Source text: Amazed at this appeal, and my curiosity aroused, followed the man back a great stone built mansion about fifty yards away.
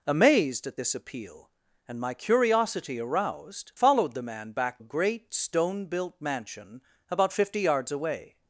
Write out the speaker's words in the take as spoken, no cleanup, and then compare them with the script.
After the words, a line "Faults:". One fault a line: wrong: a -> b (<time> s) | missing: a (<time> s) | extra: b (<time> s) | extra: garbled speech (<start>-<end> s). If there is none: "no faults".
Amazed at this appeal, and my curiosity aroused, followed the man back a great stone built mansion about fifty yards away.
Faults:
no faults